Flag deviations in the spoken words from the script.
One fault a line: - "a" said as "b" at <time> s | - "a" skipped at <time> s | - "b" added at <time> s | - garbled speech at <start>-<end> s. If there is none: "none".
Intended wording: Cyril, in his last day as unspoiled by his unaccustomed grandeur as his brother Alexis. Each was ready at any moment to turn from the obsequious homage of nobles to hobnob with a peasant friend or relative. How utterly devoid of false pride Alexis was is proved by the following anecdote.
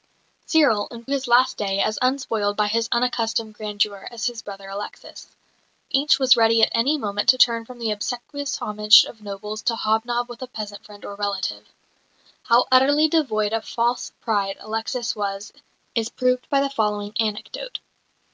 none